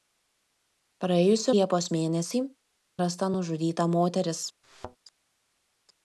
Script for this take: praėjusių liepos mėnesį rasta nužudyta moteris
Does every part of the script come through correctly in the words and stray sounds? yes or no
no